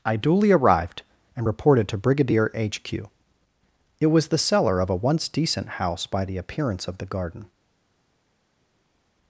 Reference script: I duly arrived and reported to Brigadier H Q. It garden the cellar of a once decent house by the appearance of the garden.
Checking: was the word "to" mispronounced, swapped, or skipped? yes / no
no